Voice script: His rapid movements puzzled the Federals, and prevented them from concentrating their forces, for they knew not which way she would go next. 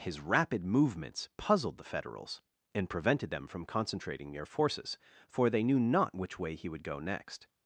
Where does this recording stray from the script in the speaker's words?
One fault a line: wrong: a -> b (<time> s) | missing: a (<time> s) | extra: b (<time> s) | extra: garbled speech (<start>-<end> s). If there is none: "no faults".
wrong: she -> he (6.5 s)